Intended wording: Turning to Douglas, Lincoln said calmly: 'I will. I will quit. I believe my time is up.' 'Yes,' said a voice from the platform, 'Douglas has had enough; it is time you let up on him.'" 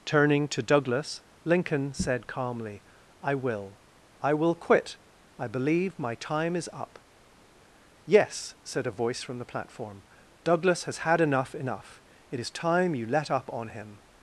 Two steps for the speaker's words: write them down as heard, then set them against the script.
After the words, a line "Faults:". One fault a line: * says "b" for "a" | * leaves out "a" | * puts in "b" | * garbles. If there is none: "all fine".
Turning to Douglas, Lincoln said calmly: 'I will. I will quit. I believe my time is up.' 'Yes,' said a voice from the platform, 'Douglas has had enough enough; it is time you let up on him.'"
Faults:
* puts in "enough"